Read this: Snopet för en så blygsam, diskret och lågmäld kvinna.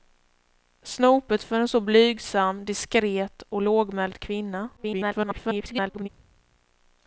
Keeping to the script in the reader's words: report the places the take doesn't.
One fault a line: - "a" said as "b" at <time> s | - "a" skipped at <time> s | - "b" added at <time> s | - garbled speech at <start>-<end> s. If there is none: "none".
- garbled speech at 4.8-6.1 s